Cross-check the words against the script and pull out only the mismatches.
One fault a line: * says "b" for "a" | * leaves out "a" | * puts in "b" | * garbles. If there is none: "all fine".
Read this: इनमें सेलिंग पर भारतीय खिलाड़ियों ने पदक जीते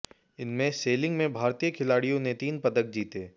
* says "में" for "पर"
* puts in "तीन"